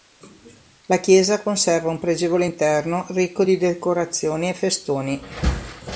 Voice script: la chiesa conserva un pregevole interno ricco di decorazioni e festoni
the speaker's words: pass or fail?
pass